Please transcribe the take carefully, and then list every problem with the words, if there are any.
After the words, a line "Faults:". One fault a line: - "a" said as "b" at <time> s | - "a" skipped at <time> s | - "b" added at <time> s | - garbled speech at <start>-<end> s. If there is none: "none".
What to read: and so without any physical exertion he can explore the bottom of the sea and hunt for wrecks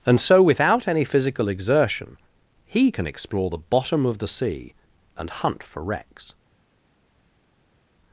and so without any physical exertion he can explore the bottom of the sea and hunt for wrecks
Faults:
none